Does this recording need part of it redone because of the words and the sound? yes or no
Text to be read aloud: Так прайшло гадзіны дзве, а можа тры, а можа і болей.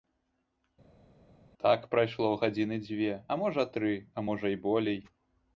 no